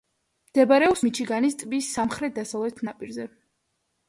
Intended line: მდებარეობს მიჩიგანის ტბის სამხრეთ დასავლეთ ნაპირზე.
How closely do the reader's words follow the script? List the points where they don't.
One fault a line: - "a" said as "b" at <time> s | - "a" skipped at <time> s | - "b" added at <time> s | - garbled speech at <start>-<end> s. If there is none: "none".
none